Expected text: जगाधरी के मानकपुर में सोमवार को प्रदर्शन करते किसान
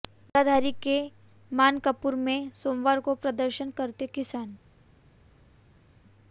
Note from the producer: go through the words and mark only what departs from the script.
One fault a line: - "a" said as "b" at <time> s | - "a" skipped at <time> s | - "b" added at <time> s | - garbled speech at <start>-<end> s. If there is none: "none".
none